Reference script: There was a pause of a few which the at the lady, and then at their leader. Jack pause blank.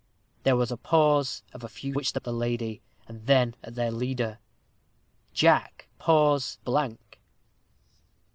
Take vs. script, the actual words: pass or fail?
pass